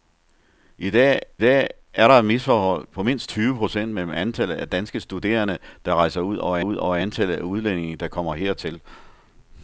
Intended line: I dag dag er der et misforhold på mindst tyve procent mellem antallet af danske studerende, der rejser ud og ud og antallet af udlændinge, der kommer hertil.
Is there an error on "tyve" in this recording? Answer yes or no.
no